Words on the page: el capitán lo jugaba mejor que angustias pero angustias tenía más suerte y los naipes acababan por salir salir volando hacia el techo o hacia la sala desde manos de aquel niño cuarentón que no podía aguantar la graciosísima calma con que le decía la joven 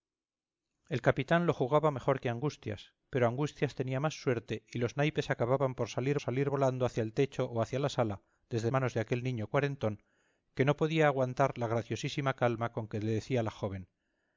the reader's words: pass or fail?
pass